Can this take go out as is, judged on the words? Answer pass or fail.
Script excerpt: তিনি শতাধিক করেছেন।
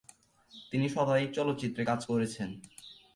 fail